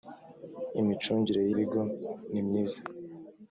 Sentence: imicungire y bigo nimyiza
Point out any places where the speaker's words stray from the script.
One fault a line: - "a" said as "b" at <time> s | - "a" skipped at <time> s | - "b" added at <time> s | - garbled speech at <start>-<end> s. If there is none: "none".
none